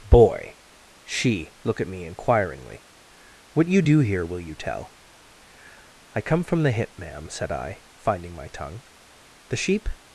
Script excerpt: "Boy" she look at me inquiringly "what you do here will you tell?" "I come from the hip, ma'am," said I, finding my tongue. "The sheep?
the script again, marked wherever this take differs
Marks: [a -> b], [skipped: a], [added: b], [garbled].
"Boy" she look at me inquiringly "what you do here will you tell?" "I come from the hip, ma'am," said I, finding my tongue. "The sheep?